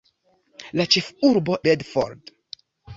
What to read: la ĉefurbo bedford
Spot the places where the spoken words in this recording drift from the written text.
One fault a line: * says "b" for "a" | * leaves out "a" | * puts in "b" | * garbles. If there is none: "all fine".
all fine